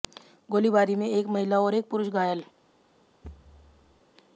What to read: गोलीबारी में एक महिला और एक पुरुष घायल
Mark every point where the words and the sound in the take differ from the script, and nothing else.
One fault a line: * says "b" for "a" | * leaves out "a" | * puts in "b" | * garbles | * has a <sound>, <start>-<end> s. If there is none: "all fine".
* has a thud, 3.2-4.0 s